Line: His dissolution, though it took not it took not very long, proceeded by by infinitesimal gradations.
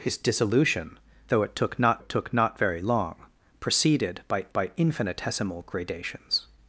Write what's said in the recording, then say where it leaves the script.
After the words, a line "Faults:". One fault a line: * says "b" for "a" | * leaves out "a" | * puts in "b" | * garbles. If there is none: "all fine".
His dissolution, though it took not it took not very long, proceeded by by infinitesimal gradations.
Faults:
all fine